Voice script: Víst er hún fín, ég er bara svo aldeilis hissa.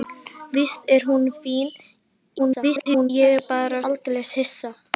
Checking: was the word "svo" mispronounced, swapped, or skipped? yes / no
yes